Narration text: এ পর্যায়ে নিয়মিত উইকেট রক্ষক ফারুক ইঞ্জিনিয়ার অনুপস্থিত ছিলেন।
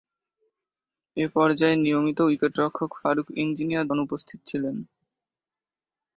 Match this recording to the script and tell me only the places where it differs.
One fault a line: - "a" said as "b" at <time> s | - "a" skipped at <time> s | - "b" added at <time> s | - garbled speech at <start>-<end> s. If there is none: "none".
none